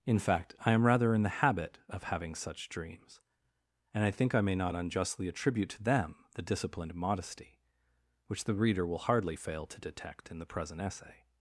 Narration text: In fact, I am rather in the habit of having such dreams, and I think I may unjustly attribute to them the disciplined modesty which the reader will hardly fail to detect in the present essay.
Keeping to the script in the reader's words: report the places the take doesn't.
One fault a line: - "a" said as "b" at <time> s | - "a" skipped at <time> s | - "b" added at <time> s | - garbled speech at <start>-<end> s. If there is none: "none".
- "not" added at 4.5 s